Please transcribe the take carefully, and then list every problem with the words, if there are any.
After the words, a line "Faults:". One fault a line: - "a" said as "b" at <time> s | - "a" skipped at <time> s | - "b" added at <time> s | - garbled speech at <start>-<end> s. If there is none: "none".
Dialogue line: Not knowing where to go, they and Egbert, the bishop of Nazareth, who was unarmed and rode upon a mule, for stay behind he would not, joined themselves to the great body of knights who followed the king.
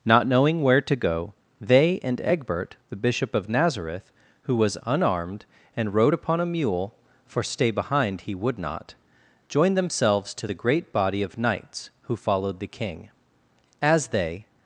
Not knowing where to go, they and Egbert, the bishop of Nazareth, who was unarmed and rode upon a mule, for stay behind he would not, joined themselves to the great body of knights who followed the king. As they
Faults:
- "As they" added at 13.8 s